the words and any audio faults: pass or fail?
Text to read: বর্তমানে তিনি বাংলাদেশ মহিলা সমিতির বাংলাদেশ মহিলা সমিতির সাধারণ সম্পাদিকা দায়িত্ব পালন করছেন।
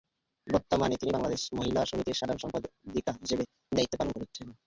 fail